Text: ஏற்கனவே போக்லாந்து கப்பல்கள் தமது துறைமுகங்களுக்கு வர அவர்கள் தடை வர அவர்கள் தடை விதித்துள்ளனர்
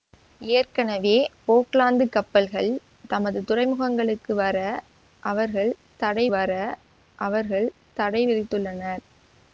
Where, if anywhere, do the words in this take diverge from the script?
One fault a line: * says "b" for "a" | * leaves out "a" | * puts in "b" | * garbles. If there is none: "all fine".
all fine